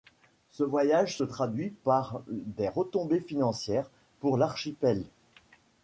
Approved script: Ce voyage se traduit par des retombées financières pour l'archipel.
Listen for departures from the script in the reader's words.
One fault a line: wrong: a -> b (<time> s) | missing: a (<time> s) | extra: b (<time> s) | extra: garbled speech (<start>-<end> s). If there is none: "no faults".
no faults